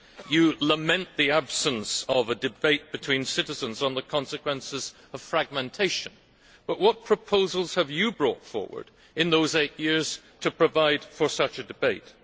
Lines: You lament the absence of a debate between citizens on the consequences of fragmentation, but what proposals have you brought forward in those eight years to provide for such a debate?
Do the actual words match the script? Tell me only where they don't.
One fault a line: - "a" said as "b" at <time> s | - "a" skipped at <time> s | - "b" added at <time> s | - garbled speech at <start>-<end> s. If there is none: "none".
none